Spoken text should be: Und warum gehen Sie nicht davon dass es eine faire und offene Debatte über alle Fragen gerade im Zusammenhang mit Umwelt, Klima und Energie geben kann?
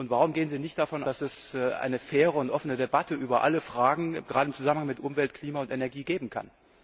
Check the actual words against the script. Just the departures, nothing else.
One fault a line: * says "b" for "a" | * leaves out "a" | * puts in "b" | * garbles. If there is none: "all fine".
all fine